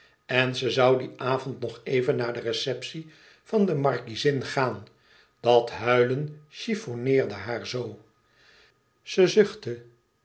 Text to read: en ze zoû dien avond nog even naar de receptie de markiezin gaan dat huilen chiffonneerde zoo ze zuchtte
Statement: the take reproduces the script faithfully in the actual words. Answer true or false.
false